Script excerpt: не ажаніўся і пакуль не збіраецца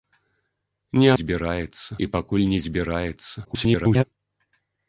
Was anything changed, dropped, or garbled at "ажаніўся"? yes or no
yes